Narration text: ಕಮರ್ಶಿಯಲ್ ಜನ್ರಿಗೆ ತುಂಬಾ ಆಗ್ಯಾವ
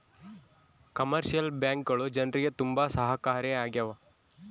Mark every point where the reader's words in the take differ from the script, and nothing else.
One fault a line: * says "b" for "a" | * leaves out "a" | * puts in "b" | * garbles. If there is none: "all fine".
* puts in "ಬ್ಯಾಂಕ್ಗಳು"
* puts in "ಸಹಾಯಕಾರಿ"